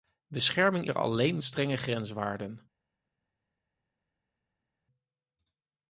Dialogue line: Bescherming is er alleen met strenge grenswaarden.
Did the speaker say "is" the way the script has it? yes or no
no